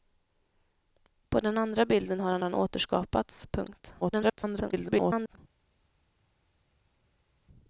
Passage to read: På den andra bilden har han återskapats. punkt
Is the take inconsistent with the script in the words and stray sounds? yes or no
yes